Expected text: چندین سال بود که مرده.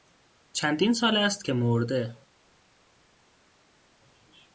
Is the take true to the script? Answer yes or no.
no